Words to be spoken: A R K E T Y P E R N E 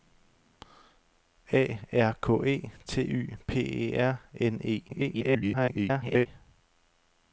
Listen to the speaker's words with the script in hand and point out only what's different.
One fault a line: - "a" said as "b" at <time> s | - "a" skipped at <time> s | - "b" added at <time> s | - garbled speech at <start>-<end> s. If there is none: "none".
- garbled speech at 4.9-6.3 s